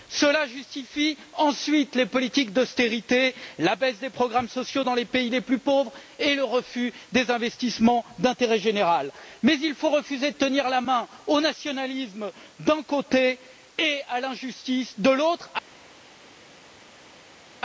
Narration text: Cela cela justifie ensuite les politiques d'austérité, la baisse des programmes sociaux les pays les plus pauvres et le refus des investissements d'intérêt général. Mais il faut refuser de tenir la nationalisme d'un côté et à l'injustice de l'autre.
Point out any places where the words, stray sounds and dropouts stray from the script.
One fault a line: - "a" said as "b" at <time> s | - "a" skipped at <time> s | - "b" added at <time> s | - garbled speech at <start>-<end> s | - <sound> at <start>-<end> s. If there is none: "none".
- "cela" skipped at 0.5 s
- "dans" added at 4.8 s
- "main au" added at 10.8 s